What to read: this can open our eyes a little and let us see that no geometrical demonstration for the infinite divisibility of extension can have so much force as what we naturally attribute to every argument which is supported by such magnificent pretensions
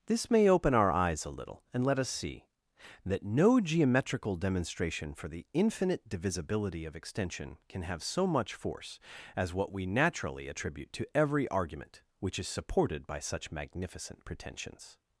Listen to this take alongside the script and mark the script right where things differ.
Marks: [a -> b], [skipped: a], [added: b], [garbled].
this [can -> may] open our eyes a little and let us see that no geometrical demonstration for the infinite divisibility of extension can have so much force as what we naturally attribute to every argument which is supported by such magnificent pretensions